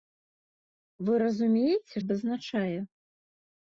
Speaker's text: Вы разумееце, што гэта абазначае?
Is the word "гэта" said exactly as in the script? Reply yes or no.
no